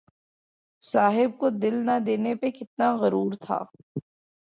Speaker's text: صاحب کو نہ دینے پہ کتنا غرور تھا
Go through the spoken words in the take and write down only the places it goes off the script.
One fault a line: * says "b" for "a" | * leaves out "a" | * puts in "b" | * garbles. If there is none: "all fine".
* puts in "دل"